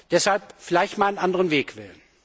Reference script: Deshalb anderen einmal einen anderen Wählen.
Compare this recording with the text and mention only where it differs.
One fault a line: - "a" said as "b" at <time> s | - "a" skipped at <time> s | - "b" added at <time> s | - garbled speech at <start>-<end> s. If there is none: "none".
- "anderen" said as "vielleicht" at 0.6 s
- "Weg" added at 1.5 s